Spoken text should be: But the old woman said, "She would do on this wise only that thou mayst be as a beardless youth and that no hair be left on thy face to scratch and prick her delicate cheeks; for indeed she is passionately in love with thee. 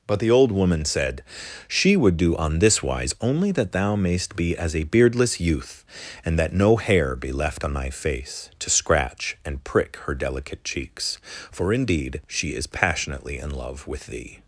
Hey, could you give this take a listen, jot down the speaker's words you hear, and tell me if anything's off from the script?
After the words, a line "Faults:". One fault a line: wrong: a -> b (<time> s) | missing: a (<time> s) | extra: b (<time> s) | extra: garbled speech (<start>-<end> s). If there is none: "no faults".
But the old woman said, "She would do on this wise only that thou mayst be as a beardless youth and that no hair be left on thy face to scratch and prick her delicate cheeks; for indeed she is passionately in love with thee.
Faults:
no faults